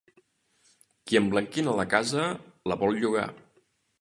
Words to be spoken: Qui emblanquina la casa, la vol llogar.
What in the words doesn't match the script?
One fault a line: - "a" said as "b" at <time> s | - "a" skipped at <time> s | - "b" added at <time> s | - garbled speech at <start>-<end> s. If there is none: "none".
none